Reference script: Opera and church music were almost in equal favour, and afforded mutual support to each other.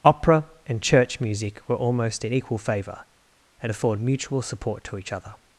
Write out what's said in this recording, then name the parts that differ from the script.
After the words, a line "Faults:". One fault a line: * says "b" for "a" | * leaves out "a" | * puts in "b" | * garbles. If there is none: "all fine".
Opera and church music were almost in equal favour, and afford mutual support to each other.
Faults:
* says "afford" for "afforded"